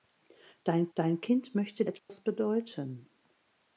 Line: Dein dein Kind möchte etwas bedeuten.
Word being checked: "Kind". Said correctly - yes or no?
yes